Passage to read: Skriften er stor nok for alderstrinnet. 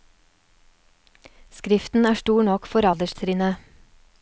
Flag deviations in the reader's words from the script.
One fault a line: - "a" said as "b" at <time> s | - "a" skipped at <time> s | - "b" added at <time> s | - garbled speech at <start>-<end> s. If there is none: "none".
none